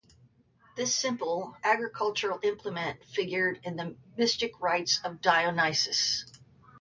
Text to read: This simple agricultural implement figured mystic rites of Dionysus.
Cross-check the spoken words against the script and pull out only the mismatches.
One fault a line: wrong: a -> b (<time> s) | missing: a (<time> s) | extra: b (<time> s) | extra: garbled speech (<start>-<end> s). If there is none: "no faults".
extra: in the (3.6 s)